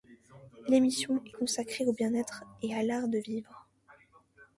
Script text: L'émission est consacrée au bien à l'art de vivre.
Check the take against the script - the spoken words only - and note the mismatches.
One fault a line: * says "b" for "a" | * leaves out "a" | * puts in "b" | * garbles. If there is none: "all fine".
* puts in "être et"